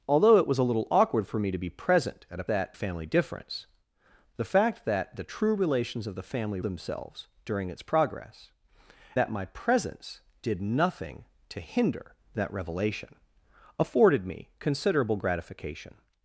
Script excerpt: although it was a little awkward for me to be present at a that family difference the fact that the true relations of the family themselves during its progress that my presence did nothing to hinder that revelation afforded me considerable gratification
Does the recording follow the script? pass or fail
pass